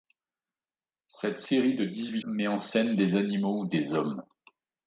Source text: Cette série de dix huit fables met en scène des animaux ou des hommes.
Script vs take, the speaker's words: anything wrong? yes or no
yes